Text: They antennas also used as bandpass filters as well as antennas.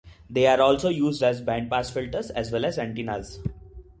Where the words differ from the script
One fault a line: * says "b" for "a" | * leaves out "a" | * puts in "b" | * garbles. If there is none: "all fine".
* says "are" for "antennas"